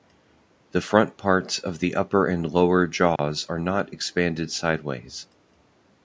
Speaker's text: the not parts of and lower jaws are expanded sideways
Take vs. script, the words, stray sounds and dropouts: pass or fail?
fail